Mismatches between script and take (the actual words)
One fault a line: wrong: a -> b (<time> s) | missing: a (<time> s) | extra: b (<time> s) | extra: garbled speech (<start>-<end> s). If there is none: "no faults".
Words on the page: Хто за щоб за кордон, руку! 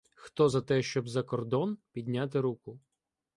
extra: те (0.6 s)
extra: підняти (1.9 s)